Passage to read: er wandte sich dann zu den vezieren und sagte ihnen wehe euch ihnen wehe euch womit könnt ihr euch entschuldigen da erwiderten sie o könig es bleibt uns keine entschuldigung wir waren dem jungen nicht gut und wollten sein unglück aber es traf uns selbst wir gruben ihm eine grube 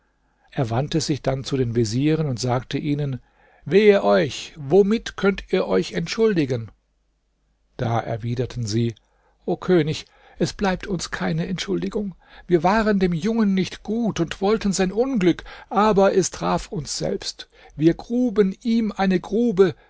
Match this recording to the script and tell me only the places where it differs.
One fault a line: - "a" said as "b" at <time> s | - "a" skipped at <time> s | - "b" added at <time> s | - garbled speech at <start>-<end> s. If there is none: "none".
- "ihnen wehe euch" skipped at 4.5 s